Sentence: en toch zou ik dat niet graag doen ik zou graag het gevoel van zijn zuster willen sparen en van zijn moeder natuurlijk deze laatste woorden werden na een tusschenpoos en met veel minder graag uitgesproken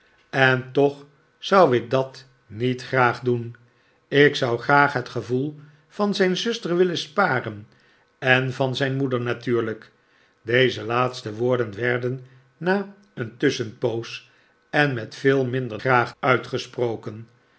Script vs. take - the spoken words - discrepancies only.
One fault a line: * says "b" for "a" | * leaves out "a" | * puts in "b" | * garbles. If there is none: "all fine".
all fine